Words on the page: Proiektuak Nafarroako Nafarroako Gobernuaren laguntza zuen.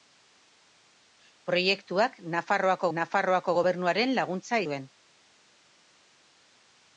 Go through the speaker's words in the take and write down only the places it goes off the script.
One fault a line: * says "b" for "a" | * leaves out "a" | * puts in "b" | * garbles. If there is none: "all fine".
all fine